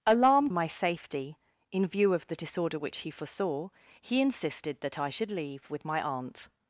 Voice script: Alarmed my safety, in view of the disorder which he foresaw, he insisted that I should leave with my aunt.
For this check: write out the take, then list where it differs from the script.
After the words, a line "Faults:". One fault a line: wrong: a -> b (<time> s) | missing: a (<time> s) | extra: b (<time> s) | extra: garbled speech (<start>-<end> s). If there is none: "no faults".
Alarmed my safety, in view of the disorder which he foresaw, he insisted that I should leave with my aunt.
Faults:
no faults